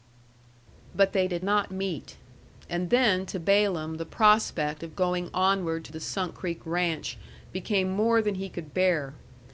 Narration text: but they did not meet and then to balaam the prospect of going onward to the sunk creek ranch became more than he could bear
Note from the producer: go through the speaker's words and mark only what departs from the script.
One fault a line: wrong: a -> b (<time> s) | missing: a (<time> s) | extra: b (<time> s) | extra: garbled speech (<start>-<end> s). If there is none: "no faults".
no faults